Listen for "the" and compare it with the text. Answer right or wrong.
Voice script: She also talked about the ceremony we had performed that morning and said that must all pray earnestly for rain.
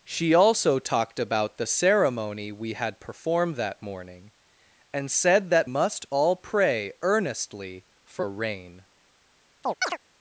right